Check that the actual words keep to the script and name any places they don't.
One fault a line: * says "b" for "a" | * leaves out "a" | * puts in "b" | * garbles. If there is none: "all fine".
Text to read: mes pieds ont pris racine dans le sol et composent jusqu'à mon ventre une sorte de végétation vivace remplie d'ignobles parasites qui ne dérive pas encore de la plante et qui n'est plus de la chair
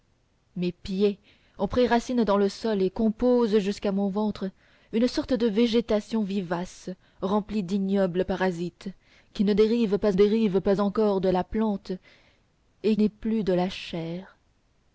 * puts in "dérive pas"
* leaves out "qui"